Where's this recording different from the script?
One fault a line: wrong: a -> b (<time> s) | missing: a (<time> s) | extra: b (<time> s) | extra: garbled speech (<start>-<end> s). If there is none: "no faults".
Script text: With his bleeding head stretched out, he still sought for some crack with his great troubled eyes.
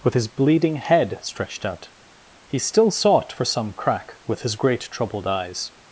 no faults